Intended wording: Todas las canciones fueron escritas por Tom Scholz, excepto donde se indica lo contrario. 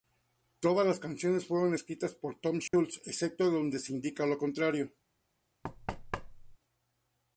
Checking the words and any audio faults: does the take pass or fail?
fail